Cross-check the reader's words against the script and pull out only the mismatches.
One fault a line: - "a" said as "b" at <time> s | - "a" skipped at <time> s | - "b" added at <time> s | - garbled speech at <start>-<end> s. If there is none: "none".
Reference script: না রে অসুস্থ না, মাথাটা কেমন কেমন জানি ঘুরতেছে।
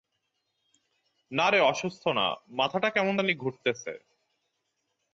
- "কেমন" skipped at 3.1 s